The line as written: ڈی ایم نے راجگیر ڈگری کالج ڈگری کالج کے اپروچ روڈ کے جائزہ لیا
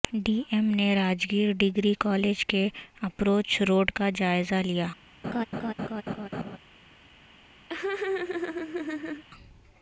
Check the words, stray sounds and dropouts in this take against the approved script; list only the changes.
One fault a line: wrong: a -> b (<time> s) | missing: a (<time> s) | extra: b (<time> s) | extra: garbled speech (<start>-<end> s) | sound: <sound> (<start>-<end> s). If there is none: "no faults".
missing: ڈگری کالج (2.5 s)
wrong: کے -> کا (3.9 s)
sound: laugh (5.2-6.6 s)
sound: laugh (7.7-9.2 s)